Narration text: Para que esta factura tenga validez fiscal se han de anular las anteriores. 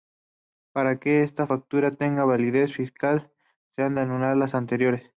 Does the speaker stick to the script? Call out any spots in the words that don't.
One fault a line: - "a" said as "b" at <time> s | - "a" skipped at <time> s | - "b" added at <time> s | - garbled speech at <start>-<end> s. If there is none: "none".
none